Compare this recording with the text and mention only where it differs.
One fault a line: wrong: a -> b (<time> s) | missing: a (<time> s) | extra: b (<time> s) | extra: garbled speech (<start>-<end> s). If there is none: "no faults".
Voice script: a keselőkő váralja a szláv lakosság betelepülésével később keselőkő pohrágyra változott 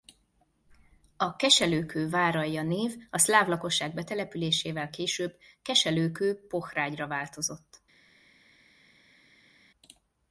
extra: név (2.6 s)